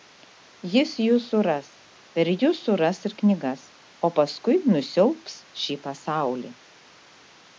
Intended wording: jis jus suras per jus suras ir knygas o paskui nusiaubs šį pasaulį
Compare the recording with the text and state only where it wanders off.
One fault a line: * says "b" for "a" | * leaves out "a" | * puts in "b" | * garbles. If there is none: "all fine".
all fine